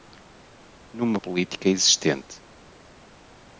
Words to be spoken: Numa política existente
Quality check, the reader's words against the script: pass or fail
pass